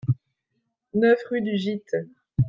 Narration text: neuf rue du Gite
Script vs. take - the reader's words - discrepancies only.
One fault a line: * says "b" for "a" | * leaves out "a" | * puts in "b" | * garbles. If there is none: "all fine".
all fine